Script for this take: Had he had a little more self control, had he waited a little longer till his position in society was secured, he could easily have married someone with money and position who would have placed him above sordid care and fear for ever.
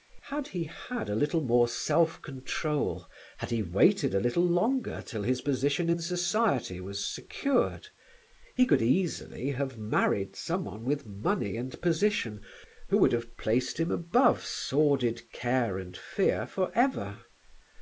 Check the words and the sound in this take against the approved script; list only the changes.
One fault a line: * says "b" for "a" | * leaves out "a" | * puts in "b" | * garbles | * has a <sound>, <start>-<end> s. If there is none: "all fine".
all fine